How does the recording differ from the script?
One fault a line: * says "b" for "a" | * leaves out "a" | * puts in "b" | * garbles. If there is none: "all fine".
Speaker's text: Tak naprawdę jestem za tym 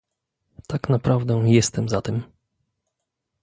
all fine